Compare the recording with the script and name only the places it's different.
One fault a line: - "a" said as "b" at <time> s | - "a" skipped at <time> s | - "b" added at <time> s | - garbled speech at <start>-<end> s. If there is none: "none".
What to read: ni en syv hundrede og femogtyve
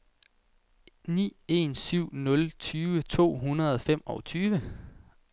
- "nul tyve to" added at 2.1 s